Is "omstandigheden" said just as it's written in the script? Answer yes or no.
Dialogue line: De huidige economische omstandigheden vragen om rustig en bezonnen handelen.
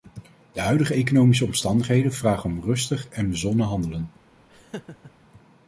yes